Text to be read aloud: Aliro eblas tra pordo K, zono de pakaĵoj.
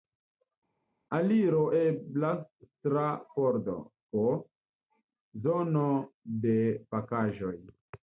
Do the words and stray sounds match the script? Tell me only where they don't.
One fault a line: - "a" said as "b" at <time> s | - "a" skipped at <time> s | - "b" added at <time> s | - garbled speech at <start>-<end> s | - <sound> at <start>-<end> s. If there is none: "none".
none